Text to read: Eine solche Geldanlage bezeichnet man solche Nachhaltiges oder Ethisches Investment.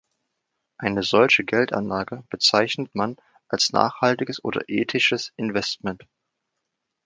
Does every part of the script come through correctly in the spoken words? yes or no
no